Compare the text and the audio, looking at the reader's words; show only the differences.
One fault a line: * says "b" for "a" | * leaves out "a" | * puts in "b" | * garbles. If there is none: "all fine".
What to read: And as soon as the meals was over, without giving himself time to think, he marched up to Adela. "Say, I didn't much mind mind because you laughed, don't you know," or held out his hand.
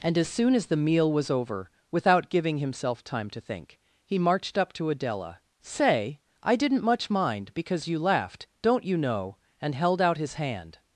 * says "meal" for "meals"
* leaves out "mind"
* says "and" for "or"